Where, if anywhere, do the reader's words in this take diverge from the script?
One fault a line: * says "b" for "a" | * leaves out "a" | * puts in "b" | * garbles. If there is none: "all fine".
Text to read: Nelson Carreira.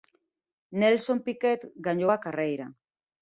* puts in "Piquet gañou a"